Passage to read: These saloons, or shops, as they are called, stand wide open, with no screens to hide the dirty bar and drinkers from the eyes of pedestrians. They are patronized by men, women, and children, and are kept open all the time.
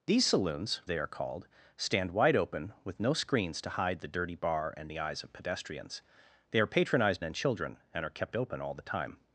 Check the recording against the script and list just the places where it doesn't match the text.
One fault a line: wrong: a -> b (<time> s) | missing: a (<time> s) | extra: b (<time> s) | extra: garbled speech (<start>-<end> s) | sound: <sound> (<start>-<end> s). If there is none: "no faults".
missing: or shops as (0.8 s)
missing: drinkers from (4.9 s)
missing: by men women (7.2 s)